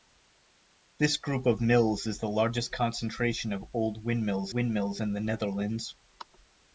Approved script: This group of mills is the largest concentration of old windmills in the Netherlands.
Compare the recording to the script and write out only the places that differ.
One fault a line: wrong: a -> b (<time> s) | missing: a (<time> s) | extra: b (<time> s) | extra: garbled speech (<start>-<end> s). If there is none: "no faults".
extra: windmills (4.5 s)